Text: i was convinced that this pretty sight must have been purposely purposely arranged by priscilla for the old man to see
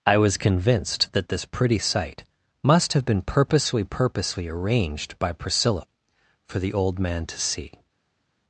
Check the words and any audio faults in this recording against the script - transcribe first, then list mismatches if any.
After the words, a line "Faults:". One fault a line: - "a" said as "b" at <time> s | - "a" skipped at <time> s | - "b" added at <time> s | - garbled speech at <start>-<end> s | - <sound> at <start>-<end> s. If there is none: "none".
i was convinced that this pretty sight must have been purposely purposely arranged by priscilla for the old man to see
Faults:
none